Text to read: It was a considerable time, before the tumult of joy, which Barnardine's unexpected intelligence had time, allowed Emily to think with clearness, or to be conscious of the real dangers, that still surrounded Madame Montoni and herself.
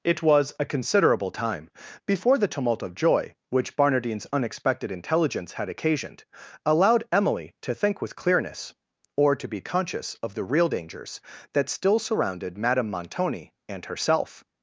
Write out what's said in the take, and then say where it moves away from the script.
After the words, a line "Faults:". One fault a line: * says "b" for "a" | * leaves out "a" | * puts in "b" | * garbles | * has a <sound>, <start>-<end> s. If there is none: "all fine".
It was a considerable time, before the tumult of joy, which Barnardine's unexpected intelligence had occasioned, allowed Emily to think with clearness, or to be conscious of the real dangers, that still surrounded Madame Montoni and herself.
Faults:
* says "occasioned" for "time"